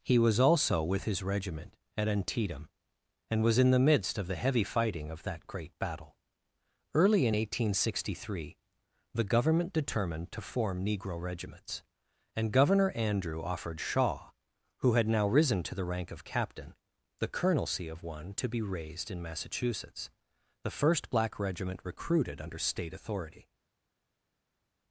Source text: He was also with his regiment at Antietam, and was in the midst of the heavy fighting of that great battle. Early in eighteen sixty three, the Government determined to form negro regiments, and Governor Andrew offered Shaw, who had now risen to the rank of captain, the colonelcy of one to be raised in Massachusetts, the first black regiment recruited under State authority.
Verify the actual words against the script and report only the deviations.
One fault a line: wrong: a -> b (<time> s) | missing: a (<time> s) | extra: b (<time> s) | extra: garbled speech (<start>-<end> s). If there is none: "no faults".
no faults